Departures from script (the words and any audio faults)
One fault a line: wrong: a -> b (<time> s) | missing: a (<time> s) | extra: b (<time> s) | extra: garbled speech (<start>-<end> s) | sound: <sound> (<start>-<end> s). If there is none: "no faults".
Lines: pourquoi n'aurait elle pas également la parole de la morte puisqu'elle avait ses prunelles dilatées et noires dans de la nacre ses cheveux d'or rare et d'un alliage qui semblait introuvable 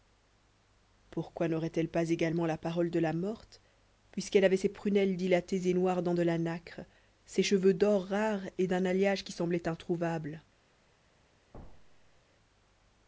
sound: thud (11.5-12.2 s)